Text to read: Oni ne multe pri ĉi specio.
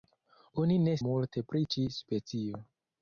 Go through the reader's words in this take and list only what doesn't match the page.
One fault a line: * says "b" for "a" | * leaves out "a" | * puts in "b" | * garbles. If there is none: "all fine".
all fine